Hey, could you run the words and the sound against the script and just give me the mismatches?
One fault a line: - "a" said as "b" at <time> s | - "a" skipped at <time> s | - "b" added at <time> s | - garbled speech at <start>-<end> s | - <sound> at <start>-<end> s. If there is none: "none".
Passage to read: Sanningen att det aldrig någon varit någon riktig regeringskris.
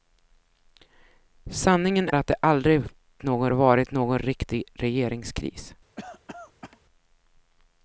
- cough at 6.0-6.8 s